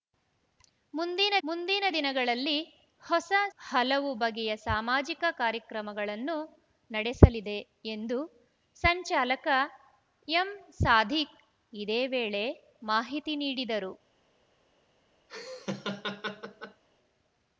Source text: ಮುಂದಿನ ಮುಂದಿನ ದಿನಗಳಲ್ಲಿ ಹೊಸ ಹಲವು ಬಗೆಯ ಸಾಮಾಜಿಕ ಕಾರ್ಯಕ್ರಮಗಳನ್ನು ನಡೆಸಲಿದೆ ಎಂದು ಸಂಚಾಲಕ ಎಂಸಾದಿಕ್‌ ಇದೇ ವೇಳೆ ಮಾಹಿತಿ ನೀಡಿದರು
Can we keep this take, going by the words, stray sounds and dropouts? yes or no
no